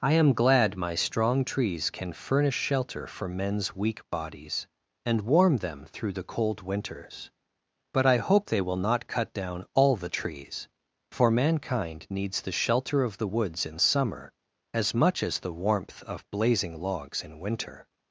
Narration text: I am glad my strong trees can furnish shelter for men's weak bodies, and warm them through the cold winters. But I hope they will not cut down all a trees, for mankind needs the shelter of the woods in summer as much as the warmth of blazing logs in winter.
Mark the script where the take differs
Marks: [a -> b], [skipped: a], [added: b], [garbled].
I am glad my strong trees can furnish shelter for men's weak bodies, and warm them through the cold winters. But I hope they will not cut down all [a -> the] trees, for mankind needs the shelter of the woods in summer as much as the warmth of blazing logs in winter.